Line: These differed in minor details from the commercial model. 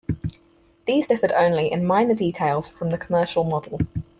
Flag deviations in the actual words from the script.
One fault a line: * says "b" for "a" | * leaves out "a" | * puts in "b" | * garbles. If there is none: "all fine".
* puts in "only"